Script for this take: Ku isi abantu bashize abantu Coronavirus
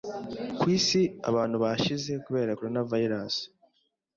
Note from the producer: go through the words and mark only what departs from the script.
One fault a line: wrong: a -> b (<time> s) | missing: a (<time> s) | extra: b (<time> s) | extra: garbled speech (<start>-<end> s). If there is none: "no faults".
wrong: abantu -> kubera (2.3 s)